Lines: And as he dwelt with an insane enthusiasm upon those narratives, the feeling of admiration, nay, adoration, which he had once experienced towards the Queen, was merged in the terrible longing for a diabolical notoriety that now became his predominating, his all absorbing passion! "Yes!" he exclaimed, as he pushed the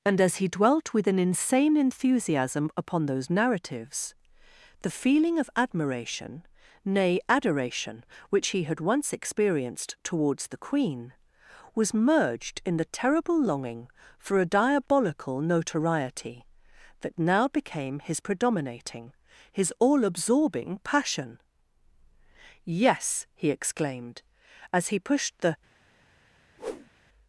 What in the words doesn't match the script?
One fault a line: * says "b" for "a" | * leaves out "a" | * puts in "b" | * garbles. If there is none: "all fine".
all fine